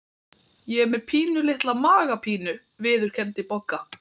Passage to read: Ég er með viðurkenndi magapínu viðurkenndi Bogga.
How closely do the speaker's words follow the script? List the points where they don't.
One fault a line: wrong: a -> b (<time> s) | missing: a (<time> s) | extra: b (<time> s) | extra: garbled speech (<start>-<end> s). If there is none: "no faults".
wrong: viðurkenndi -> pínulitla (1.1 s)